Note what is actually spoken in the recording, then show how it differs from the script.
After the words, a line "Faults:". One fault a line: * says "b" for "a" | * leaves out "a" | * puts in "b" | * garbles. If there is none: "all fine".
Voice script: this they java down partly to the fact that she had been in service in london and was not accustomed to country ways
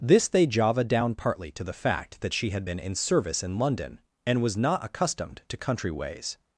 this they java down partly to the fact that she had been in service in london and was not accustomed to country ways
Faults:
all fine